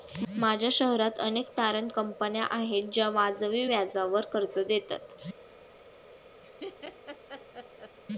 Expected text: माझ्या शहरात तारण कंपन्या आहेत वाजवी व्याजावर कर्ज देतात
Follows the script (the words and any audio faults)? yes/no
no